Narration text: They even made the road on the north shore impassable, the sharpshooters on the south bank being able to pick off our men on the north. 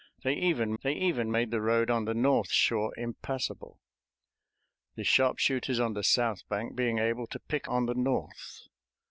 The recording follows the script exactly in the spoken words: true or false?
false